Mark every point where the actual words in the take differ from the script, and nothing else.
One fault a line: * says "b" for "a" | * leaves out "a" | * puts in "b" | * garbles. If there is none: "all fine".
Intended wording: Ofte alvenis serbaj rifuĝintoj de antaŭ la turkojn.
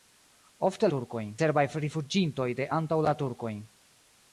* says "turkojn" for "alvenis"